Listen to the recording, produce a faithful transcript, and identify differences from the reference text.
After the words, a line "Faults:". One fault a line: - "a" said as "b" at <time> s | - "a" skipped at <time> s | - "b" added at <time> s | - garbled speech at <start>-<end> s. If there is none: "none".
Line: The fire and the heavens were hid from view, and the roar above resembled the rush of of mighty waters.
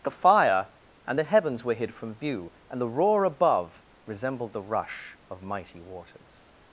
The fire and the heavens were hid from view, and the roar above resembled the rush of mighty waters.
Faults:
- "of" skipped at 5.4 s